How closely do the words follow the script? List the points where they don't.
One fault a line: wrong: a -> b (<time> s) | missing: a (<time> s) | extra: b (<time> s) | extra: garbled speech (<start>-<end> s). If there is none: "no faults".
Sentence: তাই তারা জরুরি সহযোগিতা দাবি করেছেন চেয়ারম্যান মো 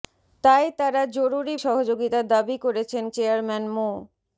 no faults